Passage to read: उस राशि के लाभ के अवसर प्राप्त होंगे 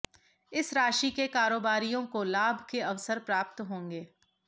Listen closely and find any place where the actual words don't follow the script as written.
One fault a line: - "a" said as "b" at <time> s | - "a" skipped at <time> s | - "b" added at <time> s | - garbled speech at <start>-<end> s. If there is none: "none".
- "उस" said as "इस" at 0.5 s
- "कारोबारियों को" added at 1.3 s